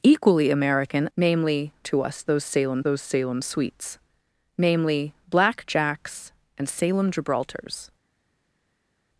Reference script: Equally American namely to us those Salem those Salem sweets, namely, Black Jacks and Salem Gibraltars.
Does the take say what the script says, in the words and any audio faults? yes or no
yes